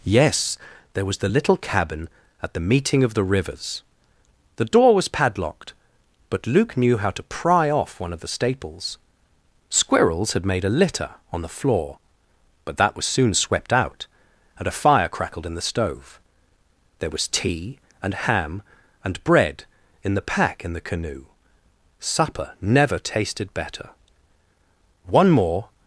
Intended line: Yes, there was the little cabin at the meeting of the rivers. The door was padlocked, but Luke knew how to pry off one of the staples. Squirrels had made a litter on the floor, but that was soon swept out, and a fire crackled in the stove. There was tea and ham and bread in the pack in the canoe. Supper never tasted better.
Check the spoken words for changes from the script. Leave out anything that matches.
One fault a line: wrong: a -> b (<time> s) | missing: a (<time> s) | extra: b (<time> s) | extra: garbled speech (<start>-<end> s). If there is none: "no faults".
extra: One more (25.1 s)